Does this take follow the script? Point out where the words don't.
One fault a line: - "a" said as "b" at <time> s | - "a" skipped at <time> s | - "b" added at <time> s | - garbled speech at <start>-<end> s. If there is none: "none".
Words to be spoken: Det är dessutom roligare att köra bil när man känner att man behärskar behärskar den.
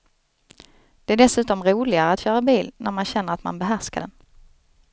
- "behärskar" skipped at 4.0 s